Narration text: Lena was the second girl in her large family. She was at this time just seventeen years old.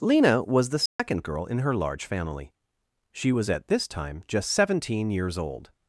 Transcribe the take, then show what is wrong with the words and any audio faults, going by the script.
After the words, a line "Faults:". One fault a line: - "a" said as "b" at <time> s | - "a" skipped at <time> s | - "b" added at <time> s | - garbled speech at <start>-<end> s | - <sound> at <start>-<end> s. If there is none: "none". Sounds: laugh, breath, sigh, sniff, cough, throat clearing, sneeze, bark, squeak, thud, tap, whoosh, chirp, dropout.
Lena was the second girl in her large family. She was at this time just seventeen years old.
Faults:
- dropout at 0.9-1.0 s